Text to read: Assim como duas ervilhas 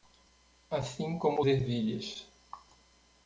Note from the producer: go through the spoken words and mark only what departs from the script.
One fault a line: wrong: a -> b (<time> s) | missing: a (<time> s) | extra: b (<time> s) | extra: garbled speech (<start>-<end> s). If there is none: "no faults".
missing: duas (1.4 s)